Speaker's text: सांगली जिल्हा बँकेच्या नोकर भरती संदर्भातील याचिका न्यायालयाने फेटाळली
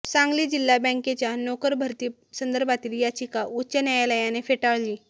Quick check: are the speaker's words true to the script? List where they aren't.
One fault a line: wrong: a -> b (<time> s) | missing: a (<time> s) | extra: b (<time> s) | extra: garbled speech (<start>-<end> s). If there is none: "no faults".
extra: उच्च (3.5 s)